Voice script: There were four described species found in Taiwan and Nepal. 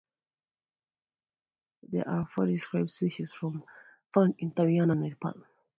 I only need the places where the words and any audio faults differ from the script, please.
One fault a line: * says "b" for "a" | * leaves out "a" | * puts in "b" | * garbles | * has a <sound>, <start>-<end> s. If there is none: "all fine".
* says "are" for "were"